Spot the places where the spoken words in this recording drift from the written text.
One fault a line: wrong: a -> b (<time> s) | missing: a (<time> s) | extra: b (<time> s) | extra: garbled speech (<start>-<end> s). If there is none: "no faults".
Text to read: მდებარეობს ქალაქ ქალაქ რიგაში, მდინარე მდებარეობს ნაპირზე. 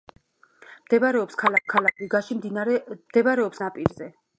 no faults